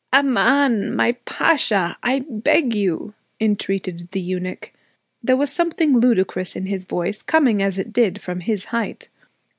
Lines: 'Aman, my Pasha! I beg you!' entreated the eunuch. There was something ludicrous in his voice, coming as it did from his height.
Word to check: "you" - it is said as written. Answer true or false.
true